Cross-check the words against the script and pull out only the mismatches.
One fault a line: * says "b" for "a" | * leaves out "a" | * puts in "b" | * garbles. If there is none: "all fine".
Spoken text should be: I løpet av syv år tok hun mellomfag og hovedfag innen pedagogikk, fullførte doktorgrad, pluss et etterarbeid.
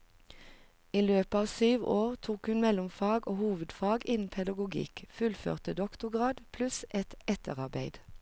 all fine